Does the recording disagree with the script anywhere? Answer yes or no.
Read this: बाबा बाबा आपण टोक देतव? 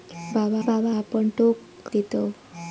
no